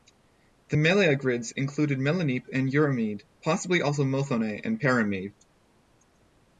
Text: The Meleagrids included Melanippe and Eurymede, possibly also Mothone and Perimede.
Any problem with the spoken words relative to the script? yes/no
no